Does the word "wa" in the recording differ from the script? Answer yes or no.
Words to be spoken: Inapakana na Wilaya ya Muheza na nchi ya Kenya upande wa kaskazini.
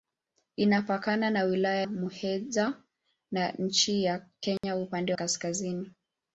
yes